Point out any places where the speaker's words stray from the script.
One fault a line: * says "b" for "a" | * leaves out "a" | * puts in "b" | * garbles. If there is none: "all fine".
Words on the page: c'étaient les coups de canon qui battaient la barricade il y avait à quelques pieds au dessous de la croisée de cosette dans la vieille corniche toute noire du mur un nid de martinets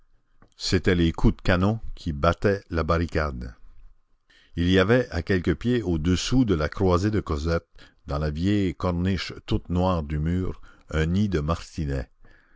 all fine